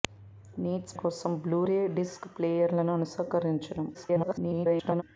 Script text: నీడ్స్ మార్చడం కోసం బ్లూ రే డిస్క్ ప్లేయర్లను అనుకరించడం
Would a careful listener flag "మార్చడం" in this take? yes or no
yes